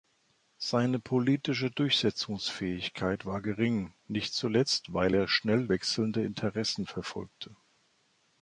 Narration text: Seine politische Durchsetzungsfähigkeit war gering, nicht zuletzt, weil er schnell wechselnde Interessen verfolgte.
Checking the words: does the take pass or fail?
pass